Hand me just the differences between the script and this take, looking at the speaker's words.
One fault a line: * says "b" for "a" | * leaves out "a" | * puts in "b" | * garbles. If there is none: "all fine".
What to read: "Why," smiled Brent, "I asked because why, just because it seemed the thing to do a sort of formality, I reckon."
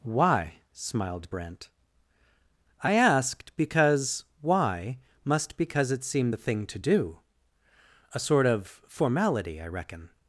* says "must" for "just"